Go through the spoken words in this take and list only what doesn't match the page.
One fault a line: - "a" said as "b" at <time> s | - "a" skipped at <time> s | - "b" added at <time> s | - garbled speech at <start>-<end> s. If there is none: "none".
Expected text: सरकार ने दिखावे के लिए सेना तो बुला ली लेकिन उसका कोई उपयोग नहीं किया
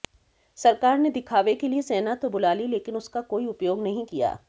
none